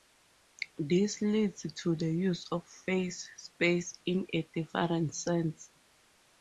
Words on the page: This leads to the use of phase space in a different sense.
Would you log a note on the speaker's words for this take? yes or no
no